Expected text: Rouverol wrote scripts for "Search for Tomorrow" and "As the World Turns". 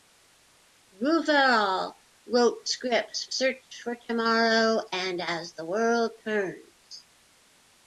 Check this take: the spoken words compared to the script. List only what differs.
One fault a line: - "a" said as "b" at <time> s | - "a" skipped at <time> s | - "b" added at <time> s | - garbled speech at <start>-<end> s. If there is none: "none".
- "for" skipped at 3.2 s